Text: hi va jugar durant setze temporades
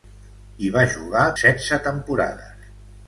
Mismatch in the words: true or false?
true